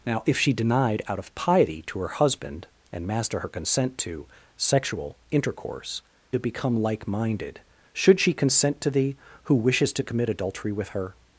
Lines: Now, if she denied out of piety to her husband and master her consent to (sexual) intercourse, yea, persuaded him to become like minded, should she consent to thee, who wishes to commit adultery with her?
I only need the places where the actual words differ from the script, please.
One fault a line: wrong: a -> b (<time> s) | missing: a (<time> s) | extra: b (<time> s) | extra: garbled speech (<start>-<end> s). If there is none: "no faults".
missing: yea persuaded him (6.0 s)